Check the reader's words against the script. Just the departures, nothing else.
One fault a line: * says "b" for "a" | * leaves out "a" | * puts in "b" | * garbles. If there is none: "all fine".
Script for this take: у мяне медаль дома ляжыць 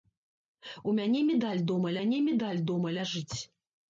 * puts in "мяне медаль дома"